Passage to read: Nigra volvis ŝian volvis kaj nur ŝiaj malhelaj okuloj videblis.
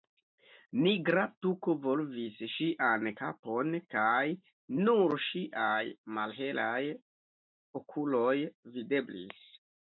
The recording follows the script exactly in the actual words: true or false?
false